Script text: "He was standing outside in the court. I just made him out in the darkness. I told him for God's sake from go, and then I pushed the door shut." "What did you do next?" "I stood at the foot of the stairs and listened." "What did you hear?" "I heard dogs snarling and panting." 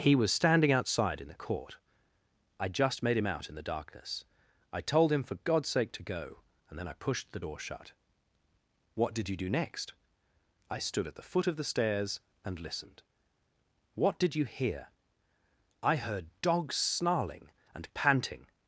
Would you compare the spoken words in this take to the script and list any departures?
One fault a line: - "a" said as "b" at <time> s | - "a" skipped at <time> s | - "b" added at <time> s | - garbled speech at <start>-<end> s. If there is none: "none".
- "from" said as "to" at 5.9 s